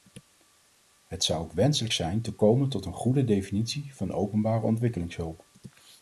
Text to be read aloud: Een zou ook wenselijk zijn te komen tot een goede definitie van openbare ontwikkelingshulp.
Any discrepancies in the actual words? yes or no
yes